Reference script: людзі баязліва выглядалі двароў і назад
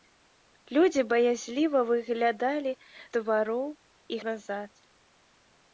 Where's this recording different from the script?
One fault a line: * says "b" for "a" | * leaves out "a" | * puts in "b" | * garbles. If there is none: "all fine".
all fine